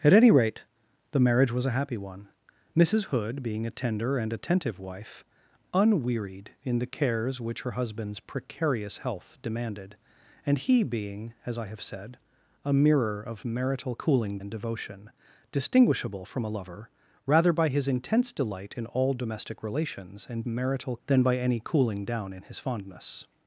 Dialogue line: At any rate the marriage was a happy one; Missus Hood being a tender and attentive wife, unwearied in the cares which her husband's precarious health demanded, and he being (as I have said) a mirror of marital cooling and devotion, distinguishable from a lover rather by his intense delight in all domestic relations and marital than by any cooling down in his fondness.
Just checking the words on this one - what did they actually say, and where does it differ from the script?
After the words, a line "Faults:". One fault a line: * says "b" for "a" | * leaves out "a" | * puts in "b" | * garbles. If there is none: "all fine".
At any rate the marriage was a happy one; Missus Hood being a tender and attentive wife, unwearied in the cares which her husband's precarious health demanded, and he being (as I have said) a mirror of marital cooling and devotion, distinguishable from a lover rather by his intense delight in all domestic relations and marital than by any cooling down in his fondness.
Faults:
all fine